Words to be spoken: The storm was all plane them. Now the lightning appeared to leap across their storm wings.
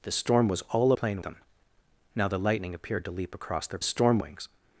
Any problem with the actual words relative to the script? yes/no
no